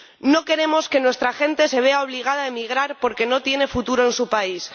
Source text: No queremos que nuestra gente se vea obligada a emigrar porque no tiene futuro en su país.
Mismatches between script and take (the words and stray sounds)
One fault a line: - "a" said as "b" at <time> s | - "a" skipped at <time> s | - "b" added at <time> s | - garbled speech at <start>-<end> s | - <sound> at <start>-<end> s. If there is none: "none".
none